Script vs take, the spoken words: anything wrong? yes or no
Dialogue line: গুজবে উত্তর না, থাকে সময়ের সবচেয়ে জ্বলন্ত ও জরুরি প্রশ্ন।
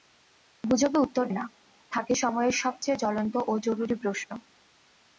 no